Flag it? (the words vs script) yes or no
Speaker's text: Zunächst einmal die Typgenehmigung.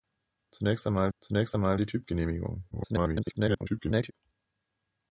yes